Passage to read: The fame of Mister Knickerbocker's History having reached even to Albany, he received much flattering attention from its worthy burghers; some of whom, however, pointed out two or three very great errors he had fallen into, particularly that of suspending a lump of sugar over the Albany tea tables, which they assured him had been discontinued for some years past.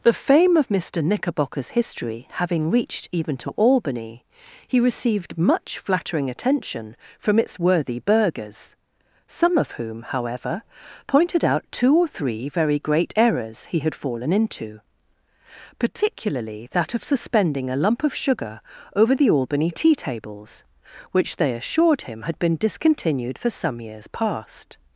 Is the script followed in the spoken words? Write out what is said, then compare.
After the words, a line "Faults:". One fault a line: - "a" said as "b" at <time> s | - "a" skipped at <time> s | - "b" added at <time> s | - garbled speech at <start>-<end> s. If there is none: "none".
The fame of Mister Knickerbocker's History having reached even to Albany, he received much flattering attention from its worthy burghers; some of whom, however, pointed out two or three very great errors he had fallen into, particularly that of suspending a lump of sugar over the Albany tea tables, which they assured him had been discontinued for some years past.
Faults:
none